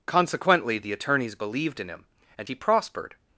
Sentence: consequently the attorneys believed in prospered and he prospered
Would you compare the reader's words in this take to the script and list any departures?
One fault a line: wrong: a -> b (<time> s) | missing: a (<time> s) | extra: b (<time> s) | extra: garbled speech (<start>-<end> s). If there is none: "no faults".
wrong: prospered -> him (1.9 s)